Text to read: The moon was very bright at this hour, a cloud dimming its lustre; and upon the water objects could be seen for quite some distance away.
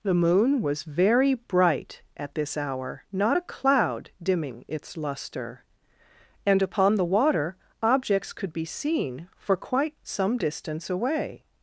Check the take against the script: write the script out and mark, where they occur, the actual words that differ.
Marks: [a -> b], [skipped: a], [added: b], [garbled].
The moon was very bright at this hour, [added: not] a cloud dimming its lustre; and upon the water objects could be seen for quite some distance away.